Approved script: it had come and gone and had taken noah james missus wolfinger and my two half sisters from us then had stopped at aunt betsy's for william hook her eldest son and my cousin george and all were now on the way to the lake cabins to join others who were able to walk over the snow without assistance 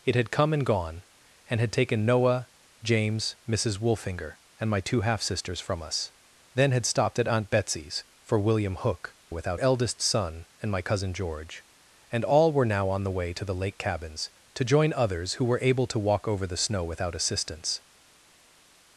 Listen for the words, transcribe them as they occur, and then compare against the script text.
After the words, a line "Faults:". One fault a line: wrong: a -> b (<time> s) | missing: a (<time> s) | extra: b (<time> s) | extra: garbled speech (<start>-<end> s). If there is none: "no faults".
it had come and gone and had taken noah james missus wolfinger and my two half sisters from us then had stopped at aunt betsy's for william hook without eldest son and my cousin george and all were now on the way to the lake cabins to join others who were able to walk over the snow without assistance
Faults:
wrong: her -> without (9.3 s)